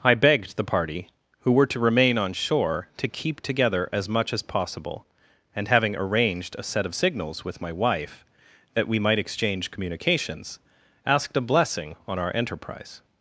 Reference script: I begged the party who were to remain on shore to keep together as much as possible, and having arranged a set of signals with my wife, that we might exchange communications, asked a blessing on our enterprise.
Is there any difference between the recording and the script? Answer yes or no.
no